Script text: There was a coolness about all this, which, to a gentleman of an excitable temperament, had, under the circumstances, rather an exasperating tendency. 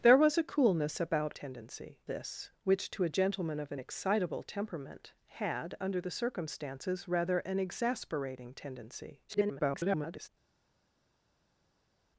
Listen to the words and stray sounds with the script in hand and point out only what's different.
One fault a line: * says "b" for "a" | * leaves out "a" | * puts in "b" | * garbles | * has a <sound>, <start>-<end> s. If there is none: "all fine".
* says "tendency" for "all"
* garbles